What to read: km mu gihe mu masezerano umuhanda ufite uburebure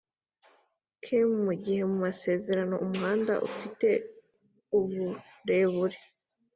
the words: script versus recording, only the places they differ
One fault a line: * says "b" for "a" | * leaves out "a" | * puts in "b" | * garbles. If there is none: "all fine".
all fine